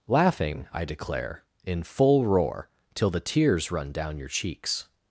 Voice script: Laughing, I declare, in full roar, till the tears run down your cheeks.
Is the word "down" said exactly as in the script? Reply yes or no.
yes